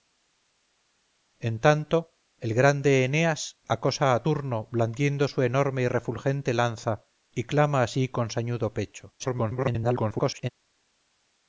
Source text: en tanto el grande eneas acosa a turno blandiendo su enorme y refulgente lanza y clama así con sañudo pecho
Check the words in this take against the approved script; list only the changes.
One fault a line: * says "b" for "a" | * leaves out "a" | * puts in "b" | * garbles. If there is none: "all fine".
* garbles